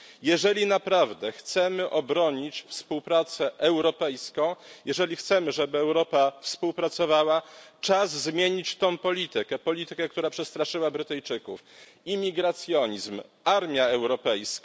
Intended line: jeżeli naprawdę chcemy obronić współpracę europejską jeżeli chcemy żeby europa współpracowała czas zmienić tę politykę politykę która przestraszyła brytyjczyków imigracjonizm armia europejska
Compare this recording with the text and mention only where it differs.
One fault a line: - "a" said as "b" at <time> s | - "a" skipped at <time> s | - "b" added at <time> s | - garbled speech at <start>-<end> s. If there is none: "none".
none